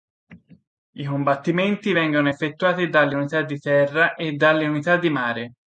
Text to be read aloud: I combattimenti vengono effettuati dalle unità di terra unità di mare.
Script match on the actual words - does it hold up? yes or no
no